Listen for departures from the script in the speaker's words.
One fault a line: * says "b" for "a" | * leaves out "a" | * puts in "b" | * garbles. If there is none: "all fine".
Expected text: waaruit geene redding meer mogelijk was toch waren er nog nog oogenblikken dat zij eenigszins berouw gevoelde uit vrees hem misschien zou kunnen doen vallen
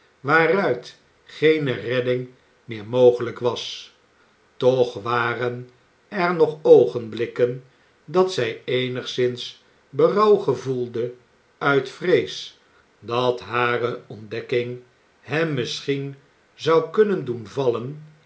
* leaves out "nog"
* puts in "dat hare ontdekking"